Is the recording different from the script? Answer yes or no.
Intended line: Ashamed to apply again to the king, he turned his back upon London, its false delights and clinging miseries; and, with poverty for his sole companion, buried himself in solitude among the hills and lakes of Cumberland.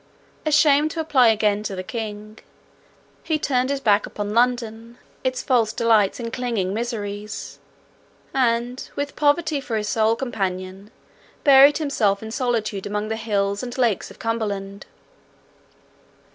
no